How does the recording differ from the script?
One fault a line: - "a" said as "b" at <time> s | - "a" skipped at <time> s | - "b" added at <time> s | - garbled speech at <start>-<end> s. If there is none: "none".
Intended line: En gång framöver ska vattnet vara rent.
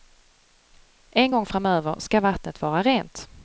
none